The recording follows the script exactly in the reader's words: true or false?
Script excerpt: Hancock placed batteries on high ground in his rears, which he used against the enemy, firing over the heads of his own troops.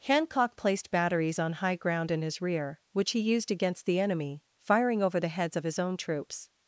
false